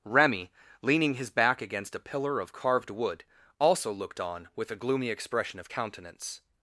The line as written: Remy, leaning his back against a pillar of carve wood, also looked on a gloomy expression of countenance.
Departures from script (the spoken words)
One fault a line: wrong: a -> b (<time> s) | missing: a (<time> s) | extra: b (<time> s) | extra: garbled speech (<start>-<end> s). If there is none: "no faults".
wrong: carve -> carved (2.5 s)
extra: with (4.5 s)